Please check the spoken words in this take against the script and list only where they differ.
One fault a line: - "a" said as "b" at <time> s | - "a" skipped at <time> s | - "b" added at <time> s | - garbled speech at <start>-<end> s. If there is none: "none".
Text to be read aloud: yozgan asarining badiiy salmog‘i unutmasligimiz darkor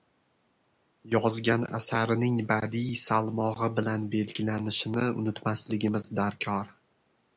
- "bilan belgilanishini" added at 3.8 s